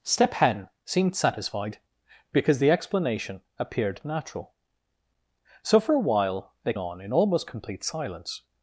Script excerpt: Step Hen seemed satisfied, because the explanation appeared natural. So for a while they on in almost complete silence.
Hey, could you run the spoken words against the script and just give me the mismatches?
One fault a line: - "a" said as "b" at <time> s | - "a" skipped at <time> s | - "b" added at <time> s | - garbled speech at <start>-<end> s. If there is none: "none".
none